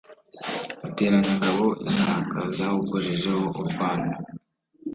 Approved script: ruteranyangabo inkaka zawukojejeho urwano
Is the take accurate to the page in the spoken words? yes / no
yes